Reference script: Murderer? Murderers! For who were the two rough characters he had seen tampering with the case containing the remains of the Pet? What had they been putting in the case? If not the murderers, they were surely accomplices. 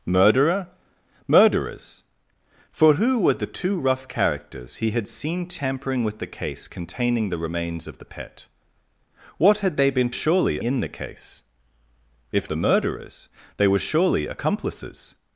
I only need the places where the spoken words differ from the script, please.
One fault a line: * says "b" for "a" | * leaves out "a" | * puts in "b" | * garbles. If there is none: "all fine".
* says "surely" for "putting"
* leaves out "not"